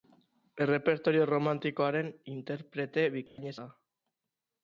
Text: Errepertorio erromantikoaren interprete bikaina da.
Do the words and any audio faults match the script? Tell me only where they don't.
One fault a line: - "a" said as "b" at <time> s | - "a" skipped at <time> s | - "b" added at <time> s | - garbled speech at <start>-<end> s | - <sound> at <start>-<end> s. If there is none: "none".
- dropout at 3.3-3.4 s